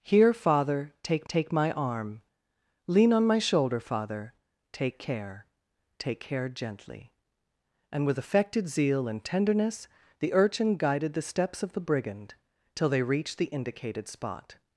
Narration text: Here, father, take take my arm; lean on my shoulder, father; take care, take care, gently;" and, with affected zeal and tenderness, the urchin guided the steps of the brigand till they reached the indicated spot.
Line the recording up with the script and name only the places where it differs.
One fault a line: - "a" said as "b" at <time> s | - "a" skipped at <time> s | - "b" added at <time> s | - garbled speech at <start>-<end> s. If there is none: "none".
none